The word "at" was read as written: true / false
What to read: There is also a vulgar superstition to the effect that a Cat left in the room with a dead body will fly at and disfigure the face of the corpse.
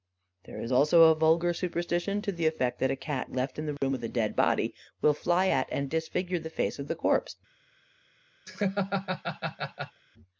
true